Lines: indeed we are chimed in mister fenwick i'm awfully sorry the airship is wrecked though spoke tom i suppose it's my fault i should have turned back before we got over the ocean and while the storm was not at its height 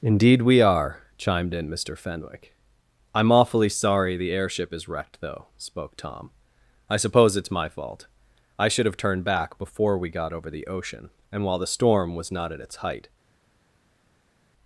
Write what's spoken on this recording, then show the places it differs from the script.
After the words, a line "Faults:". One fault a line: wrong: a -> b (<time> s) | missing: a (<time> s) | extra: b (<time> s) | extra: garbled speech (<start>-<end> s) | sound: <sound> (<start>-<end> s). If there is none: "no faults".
indeed we are chimed in mister fenwick i'm awfully sorry the airship is wrecked though spoke tom i suppose it's my fault i should have turned back before we got over the ocean and while the storm was not at its height
Faults:
no faults